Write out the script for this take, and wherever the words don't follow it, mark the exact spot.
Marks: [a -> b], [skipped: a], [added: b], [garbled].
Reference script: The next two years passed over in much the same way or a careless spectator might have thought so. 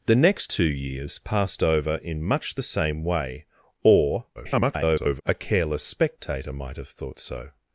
The next two years passed over in much the same way or [garbled] a careless spectator might have thought so.